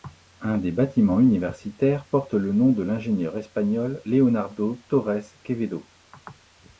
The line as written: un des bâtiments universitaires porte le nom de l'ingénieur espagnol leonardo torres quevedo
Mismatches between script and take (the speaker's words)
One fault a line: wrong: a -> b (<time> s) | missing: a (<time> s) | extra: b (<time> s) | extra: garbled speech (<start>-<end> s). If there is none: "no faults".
no faults